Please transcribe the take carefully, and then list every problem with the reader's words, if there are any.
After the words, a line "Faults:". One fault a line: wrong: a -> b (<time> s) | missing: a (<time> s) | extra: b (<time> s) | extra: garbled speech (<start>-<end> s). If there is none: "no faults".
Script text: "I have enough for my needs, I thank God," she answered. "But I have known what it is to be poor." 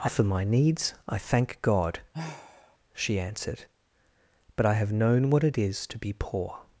"I for my needs, I thank God," she answered. "But I have known what it is to be poor."
Faults:
missing: have enough (0.1 s)